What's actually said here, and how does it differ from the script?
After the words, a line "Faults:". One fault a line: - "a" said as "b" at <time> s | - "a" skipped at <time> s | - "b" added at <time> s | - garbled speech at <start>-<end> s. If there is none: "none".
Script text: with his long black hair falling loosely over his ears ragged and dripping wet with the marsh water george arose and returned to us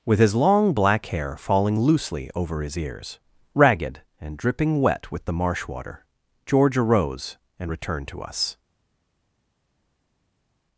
with his long black hair falling loosely over his ears ragged and dripping wet with the marsh water george arose and returned to us
Faults:
none